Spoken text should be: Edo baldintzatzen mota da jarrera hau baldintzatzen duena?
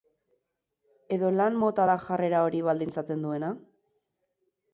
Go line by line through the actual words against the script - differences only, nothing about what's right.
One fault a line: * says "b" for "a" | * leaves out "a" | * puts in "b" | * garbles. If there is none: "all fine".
* says "lan" for "baldintzatzen"
* says "hori" for "hau"